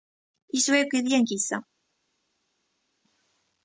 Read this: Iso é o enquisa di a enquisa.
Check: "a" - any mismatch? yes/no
no